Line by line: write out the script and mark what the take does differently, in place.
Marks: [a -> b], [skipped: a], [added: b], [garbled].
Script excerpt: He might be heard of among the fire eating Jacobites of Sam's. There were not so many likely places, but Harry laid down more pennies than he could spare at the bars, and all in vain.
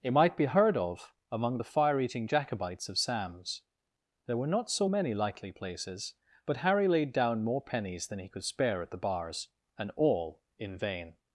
[He -> It] might be heard of among the fire eating Jacobites of Sam's. There were not so many likely places, but Harry laid down more pennies than he could spare at the bars, and all in vain.